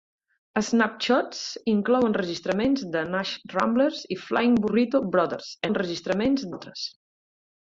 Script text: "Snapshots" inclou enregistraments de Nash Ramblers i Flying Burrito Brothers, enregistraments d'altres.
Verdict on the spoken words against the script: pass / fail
pass